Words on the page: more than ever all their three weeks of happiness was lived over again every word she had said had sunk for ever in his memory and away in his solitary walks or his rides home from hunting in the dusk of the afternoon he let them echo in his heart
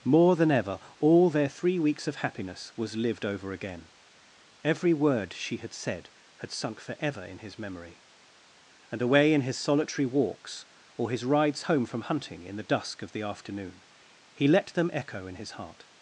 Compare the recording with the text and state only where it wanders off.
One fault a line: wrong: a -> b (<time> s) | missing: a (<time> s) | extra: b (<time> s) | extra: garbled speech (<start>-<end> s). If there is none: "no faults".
no faults